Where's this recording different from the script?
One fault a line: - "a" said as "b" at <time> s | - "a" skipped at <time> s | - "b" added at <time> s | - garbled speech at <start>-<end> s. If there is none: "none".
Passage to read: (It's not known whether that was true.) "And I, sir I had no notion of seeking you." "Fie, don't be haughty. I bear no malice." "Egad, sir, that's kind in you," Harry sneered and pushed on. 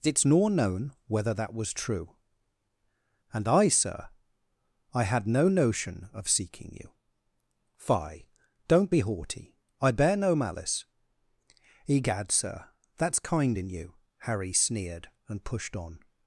- "not" said as "nor" at 0.2 s